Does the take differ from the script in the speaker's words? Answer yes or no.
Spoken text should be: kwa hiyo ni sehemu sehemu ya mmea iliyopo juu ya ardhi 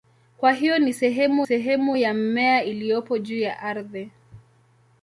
no